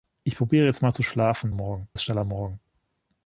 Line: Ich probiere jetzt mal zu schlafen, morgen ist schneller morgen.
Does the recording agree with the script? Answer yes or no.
yes